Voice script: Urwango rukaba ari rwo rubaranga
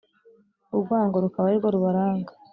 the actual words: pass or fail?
pass